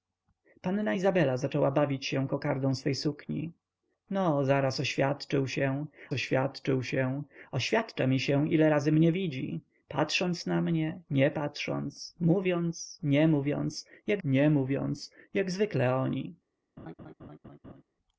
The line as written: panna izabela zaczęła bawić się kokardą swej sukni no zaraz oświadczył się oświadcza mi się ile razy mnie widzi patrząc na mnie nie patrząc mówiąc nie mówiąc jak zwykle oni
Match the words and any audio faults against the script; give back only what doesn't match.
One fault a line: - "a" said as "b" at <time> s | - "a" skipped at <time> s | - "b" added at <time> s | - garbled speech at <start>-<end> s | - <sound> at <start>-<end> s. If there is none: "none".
- "oświadczył się" added at 6.1 s
- "nie mówiąc jak" added at 14.2 s
- laugh at 16.8-17.8 s